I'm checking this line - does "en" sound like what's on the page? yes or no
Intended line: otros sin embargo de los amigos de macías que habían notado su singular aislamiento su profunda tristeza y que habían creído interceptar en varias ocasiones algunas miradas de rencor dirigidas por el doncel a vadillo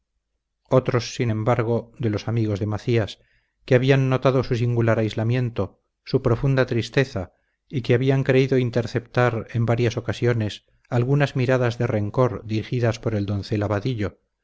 yes